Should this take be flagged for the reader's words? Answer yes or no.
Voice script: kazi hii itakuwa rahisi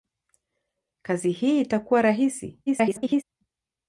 yes